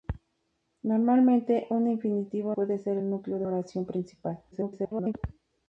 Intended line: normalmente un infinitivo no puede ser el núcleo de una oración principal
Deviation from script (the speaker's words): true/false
true